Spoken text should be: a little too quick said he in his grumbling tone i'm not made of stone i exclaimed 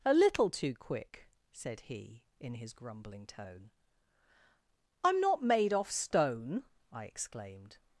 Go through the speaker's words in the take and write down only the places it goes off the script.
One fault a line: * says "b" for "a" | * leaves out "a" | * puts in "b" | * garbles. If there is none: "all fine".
* says "off" for "of"